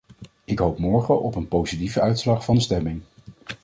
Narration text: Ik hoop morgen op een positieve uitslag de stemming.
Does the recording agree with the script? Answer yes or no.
no